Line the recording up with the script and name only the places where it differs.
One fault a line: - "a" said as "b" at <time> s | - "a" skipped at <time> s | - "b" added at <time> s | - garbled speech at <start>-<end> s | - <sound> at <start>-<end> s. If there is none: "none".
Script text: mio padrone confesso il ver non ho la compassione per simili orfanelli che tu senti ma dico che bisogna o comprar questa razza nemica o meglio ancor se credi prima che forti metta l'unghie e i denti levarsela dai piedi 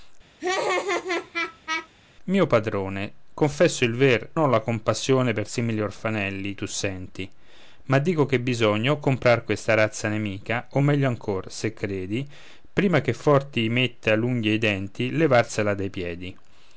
- laugh at 0.4-1.9 s
- "non" skipped at 4.3 s
- "che" skipped at 6.6 s